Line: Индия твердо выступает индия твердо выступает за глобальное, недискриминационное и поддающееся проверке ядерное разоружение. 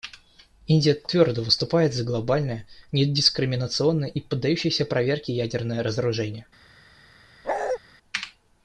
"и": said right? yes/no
yes